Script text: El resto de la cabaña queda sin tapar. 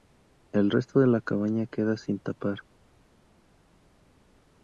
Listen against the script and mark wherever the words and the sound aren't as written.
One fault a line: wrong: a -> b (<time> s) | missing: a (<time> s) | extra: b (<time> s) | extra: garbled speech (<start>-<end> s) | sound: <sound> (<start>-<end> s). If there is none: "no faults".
no faults